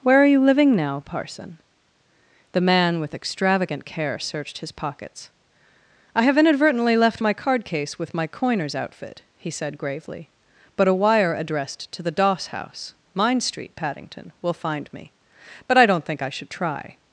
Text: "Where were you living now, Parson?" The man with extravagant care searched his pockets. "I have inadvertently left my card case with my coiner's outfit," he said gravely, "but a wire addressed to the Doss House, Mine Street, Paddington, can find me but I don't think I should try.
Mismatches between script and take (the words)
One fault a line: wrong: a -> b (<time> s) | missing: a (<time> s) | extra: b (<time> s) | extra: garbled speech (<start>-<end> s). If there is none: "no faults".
wrong: were -> are (0.2 s)
wrong: can -> will (14.4 s)